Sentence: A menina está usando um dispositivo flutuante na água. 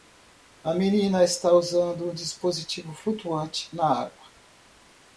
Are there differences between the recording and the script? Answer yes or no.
no